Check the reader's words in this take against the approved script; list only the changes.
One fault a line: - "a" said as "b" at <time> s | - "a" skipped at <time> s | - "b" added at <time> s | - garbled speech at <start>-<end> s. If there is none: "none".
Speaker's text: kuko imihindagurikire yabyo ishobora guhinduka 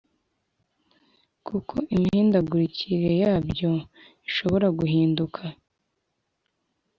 none